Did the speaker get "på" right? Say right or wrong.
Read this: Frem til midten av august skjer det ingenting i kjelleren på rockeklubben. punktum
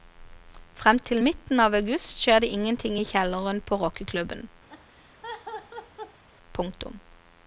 right